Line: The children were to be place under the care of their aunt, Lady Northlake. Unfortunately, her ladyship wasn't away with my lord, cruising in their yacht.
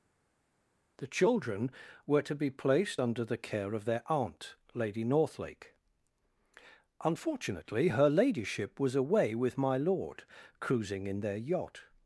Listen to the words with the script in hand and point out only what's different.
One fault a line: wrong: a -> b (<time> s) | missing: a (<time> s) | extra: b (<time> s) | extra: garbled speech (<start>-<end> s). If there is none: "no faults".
wrong: place -> placed (2.5 s)
wrong: wasn't -> was (8.8 s)